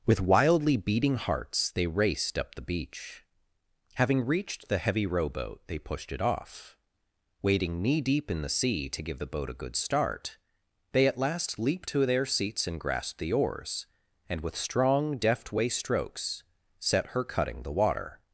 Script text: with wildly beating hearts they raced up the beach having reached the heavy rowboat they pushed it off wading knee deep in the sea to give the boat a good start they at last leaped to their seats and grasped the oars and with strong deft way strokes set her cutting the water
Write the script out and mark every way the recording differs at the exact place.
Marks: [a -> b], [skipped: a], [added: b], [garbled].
with wildly beating hearts they raced up the beach having reached the heavy rowboat they pushed it off wading knee deep in the sea to give the boat a good start they at last leaped to their seats and grasped the oars and with strong deft way strokes set her cutting the water